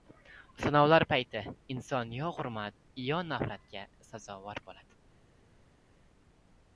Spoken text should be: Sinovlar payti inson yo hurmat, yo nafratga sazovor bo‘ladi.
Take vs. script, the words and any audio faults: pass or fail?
pass